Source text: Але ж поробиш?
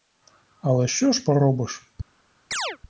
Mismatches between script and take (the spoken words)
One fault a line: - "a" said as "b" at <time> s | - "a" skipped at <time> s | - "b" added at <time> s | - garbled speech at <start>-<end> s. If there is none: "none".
- "що" added at 0.8 s